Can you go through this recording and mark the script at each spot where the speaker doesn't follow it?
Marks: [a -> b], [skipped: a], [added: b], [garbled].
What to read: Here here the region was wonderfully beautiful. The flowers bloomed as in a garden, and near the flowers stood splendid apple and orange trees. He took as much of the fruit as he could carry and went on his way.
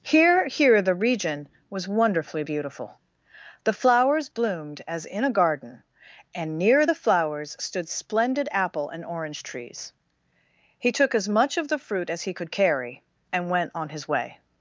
Here here the region was wonderfully beautiful. The flowers bloomed as in a garden, and near the flowers stood splendid apple and orange trees. He took as much of the fruit as he could carry and went on his way.